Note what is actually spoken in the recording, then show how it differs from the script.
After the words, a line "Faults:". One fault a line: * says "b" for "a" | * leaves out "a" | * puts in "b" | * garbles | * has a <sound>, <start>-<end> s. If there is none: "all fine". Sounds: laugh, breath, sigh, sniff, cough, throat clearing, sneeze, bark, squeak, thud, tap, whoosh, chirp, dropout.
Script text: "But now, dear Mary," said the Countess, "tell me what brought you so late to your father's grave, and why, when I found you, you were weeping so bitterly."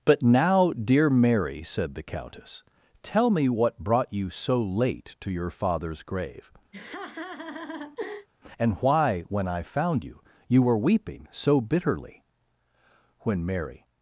"But now, dear Mary," said the Countess, "tell me what brought you so late to your father's grave, and why, when I found you, you were weeping so bitterly." When Mary
Faults:
* has a laugh, 6.7-8.3 s
* puts in "When Mary"